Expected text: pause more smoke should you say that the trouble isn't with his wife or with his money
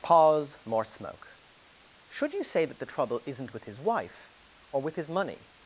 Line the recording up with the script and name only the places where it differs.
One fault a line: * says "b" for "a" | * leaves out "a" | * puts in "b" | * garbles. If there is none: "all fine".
all fine